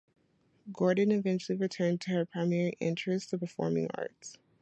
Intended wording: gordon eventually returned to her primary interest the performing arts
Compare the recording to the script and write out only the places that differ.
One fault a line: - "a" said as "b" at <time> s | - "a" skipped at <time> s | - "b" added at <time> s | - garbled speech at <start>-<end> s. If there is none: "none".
none